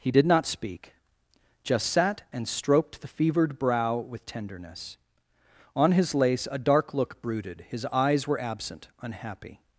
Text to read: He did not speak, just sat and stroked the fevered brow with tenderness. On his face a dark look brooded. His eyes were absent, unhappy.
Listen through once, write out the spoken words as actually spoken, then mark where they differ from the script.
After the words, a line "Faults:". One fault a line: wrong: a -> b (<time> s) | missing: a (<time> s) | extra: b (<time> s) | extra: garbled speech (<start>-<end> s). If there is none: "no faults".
He did not speak, just sat and stroked the fevered brow with tenderness. On his lace a dark look brooded. His eyes were absent, unhappy.
Faults:
wrong: face -> lace (6.1 s)